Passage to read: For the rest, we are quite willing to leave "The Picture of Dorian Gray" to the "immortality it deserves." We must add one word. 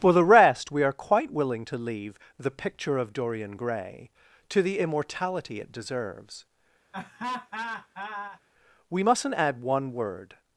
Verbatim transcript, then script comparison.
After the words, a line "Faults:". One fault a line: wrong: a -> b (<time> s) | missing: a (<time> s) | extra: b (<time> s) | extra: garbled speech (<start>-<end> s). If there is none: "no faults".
For the rest, we are quite willing to leave "The Picture of Dorian Gray" to the "immortality it deserves." We mustn't add one word.
Faults:
wrong: must -> mustn't (9.0 s)